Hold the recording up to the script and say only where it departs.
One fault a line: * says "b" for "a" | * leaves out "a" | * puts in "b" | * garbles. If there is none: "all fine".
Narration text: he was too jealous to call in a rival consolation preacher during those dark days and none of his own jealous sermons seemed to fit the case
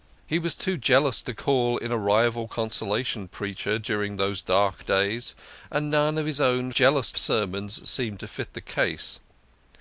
all fine